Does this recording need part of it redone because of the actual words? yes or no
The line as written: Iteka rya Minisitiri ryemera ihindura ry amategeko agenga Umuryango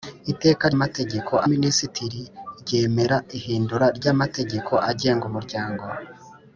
yes